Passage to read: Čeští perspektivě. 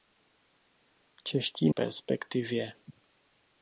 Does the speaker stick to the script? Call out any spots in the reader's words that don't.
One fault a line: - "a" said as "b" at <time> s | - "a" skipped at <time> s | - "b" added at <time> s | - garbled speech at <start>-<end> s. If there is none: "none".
none